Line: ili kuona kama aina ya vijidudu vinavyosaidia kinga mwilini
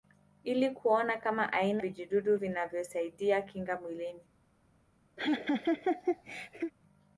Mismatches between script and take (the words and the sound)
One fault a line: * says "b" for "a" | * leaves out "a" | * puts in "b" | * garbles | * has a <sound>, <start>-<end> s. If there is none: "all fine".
* leaves out "ya"
* has a laugh, 5.2-6.7 s